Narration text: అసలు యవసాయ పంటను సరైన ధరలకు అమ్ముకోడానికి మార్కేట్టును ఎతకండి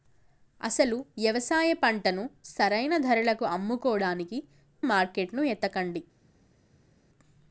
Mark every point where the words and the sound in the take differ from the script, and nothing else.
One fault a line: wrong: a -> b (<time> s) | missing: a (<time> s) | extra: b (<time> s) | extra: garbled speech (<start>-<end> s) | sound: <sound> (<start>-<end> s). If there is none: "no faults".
no faults